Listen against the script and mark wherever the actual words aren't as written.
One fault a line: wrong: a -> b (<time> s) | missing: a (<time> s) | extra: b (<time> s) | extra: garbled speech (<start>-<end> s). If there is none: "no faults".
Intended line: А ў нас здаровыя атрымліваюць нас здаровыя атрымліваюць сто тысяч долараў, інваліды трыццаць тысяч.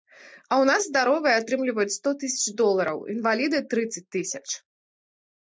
missing: нас здаровыя атрымліваюць (1.9 s)